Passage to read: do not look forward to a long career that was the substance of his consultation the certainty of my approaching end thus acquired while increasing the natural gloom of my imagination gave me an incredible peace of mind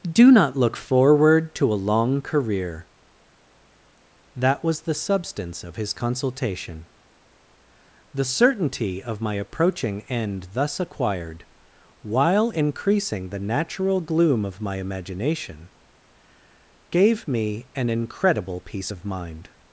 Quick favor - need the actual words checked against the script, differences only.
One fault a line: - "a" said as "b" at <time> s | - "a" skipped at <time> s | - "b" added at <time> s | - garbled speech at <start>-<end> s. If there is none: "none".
none